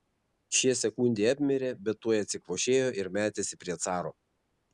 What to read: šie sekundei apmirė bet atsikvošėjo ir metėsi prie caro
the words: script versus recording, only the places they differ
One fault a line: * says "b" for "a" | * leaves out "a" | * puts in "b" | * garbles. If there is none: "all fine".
* puts in "tuoj"